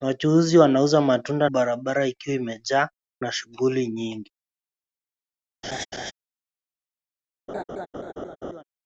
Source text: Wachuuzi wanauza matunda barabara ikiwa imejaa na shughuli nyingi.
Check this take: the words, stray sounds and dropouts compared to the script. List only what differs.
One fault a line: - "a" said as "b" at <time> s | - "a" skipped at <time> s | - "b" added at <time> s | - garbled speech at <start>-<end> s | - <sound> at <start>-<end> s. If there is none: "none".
- laugh at 5.6-6.1 s
- laugh at 7.5-8.6 s